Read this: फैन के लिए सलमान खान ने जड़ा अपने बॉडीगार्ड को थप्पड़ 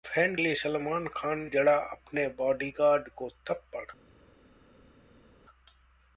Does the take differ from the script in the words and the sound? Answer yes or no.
yes